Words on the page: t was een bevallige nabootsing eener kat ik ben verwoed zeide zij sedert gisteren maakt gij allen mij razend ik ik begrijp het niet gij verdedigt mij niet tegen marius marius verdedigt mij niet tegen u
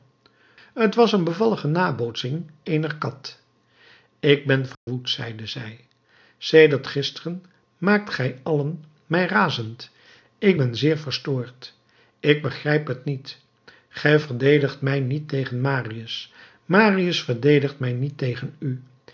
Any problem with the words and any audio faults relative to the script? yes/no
yes